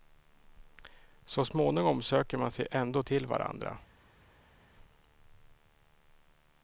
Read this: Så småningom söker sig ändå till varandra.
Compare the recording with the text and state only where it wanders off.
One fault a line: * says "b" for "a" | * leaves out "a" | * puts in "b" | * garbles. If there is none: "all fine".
* puts in "man"